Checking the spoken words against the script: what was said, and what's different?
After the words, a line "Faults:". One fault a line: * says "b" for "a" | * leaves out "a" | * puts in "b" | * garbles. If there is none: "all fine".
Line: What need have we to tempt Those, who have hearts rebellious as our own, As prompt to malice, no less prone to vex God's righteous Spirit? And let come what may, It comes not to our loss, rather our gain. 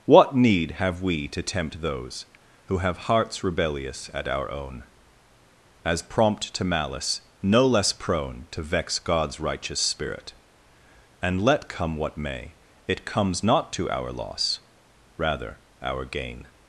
What need have we to tempt Those, who have hearts rebellious at our own, As prompt to malice, no less prone to vex God's righteous Spirit? And let come what may, It comes not to our loss, rather our gain.
Faults:
* says "at" for "as"